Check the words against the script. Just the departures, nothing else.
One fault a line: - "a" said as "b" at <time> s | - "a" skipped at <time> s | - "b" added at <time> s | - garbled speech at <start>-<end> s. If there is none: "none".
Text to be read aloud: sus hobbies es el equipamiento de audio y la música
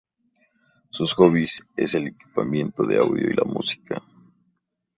none